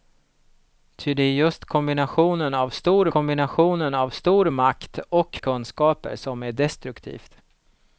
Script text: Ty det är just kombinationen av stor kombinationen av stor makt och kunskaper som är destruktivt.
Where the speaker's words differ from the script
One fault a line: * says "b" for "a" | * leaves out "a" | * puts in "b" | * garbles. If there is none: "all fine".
all fine